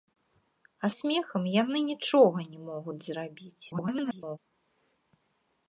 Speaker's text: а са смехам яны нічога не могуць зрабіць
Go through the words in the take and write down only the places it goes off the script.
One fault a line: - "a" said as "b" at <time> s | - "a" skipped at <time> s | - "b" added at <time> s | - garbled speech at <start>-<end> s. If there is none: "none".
- "са" skipped at 0.9 s
- garbled speech at 3.7-4.4 s